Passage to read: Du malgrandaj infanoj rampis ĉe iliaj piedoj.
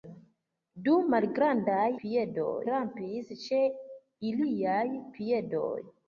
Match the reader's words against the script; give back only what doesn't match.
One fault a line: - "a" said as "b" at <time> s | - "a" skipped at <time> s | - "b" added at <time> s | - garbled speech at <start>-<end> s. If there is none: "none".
- "infanoj" said as "piedoj" at 2.0 s